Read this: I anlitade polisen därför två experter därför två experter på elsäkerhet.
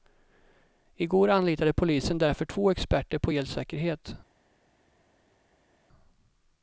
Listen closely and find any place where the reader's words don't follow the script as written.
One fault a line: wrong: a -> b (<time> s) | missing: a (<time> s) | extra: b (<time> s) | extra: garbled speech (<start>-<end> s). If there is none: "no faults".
extra: går (1.1 s)
missing: därför två experter (3.2 s)